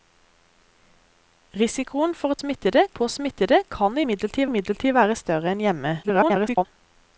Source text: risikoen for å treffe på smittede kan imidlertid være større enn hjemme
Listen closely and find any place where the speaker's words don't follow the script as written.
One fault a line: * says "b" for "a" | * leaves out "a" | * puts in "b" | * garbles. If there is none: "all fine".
* says "smittede" for "treffe"
* puts in "imidlertid"
* garbles